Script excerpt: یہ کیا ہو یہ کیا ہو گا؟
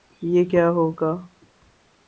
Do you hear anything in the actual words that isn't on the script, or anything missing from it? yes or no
yes